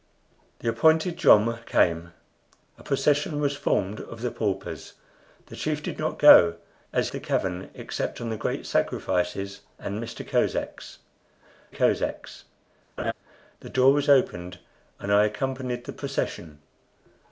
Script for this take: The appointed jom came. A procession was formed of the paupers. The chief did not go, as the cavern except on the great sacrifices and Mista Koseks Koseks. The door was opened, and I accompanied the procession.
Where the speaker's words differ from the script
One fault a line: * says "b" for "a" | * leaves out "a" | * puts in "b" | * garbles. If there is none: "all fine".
all fine